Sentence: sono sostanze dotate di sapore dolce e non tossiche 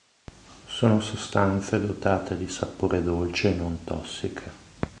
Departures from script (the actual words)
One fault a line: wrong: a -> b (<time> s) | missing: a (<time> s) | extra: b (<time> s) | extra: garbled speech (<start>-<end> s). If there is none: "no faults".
no faults